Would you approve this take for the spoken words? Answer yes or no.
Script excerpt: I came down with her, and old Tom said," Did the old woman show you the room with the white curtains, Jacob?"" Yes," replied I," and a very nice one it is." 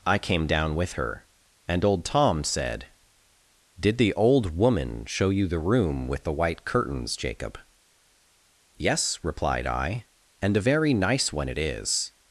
yes